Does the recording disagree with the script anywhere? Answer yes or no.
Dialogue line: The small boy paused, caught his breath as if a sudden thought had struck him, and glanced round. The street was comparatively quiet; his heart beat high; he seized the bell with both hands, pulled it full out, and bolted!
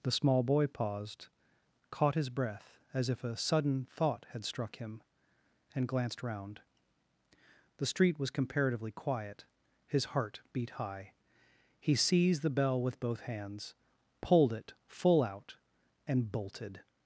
no